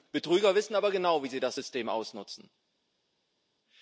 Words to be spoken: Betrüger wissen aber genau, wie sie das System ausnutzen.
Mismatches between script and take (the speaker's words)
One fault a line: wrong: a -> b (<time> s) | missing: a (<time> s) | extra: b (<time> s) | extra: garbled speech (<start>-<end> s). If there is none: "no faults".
no faults